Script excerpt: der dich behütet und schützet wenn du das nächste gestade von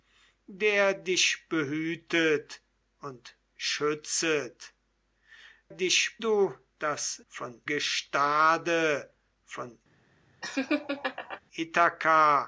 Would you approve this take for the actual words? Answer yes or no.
no